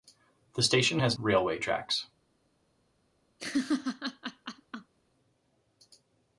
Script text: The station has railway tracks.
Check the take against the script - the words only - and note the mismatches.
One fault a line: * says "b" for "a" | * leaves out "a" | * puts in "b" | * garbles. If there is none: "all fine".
all fine